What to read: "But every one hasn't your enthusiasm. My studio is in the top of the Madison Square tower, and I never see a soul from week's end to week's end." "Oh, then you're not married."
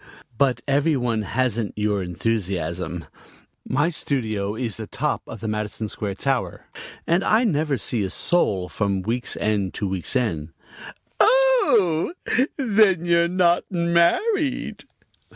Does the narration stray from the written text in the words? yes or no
yes